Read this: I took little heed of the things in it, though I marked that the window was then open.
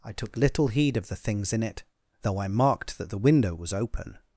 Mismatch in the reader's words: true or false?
true